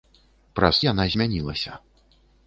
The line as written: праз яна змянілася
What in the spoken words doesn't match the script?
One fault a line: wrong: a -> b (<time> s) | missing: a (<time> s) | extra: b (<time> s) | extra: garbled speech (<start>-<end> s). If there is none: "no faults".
no faults